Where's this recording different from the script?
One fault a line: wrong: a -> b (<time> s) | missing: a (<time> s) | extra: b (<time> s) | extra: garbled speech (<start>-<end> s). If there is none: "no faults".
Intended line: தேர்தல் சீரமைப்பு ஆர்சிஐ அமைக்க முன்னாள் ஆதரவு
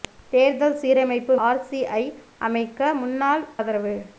no faults